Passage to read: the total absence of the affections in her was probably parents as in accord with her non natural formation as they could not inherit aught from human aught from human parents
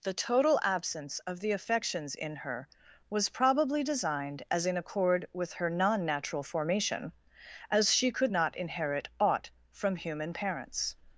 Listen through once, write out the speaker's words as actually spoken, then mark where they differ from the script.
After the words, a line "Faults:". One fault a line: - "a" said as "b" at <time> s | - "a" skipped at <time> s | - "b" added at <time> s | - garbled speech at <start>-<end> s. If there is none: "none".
the total absence of the affections in her was probably designed as in accord with her non natural formation as she could not inherit aught from human parents
Faults:
- "parents" said as "designed" at 3.8 s
- "they" said as "she" at 7.9 s
- "aught from human" skipped at 10.3 s